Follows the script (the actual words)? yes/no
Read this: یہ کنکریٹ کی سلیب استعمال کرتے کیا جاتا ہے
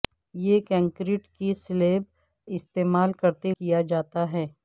yes